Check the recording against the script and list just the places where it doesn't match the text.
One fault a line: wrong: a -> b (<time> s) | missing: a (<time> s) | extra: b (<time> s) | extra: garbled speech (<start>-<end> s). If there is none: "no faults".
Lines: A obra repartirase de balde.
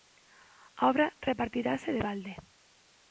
no faults